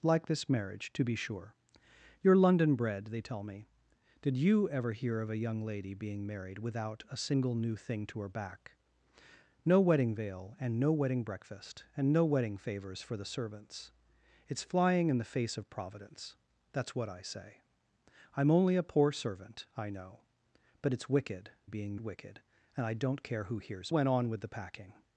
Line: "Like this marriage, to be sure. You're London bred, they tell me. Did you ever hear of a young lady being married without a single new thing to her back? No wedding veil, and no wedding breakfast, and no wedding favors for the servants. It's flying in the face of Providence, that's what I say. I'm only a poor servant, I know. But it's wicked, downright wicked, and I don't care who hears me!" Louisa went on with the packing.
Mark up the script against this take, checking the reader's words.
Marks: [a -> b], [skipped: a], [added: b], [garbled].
"Like this marriage, to be sure. You're London bred, they tell me. Did you ever hear of a young lady being married without a single new thing to her back? No wedding veil, and no wedding breakfast, and no wedding favors for the servants. It's flying in the face of Providence, that's what I say. I'm only a poor servant, I know. But it's wicked, [downright -> being] wicked, and I don't care who hears [skipped: me!" Louisa] went on with the packing.